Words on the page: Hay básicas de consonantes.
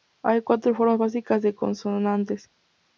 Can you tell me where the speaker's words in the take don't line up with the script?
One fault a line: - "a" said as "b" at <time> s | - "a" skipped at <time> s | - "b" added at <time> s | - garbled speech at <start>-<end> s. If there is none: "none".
- "cuatro formas" added at 0.4 s